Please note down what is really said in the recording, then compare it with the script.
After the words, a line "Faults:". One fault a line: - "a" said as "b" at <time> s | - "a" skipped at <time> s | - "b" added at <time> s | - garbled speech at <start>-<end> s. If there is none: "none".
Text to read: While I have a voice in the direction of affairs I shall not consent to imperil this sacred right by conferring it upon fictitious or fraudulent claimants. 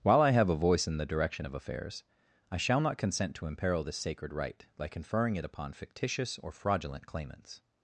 While I have a voice in the direction of affairs I shall not consent to imperil this sacred right by conferring it upon fictitious or fraudulent claimants.
Faults:
none